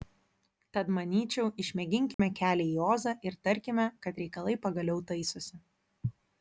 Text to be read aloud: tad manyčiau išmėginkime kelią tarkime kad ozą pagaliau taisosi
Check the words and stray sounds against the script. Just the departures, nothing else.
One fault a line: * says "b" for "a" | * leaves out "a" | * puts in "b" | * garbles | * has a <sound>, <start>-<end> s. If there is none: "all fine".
* has a dropout, 2.1-2.2 s
* puts in "į ozą ir"
* says "reikalai" for "ozą"